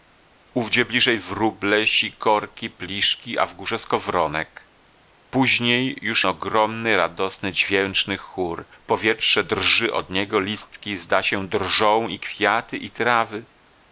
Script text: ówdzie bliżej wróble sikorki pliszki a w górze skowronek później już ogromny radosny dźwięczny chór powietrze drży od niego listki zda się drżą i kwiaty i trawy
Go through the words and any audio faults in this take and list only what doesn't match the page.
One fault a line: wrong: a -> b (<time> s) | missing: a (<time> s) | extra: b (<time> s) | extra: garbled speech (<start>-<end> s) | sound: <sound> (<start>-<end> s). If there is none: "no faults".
no faults